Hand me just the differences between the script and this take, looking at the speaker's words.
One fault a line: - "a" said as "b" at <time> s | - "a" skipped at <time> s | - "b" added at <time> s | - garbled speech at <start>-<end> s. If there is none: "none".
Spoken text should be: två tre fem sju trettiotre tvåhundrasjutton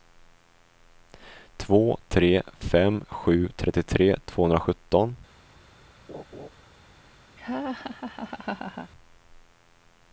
none